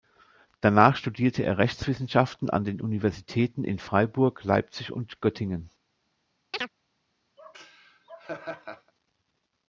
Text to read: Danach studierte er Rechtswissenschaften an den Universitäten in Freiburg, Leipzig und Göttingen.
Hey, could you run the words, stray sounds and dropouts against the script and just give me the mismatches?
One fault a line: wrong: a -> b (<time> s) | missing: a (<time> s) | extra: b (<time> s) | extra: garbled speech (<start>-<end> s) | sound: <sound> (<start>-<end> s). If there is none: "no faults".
sound: chirp (6.5-6.7 s)
sound: laugh (7.4-8.9 s)